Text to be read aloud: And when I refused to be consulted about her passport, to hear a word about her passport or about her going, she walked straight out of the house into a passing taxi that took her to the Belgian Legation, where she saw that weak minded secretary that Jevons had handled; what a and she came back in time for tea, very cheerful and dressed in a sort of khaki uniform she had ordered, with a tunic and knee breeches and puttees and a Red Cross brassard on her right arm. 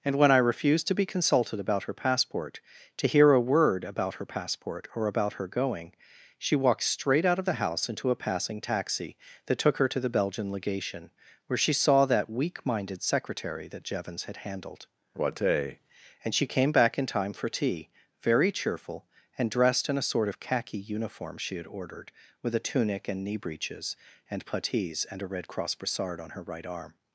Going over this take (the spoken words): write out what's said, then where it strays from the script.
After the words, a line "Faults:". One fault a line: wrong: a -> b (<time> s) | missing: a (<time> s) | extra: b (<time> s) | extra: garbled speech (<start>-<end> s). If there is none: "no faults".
And when I refused to be consulted about her passport, to hear a word about her passport or about her going, she walked straight out of the house into a passing taxi that took her to the Belgian Legation, where she saw that weak minded secretary that Jevons had handled; what a and she came back in time for tea, very cheerful and dressed in a sort of khaki uniform she had ordered, with a tunic and knee breeches and puttees and a Red Cross brassard on her right arm.
Faults:
no faults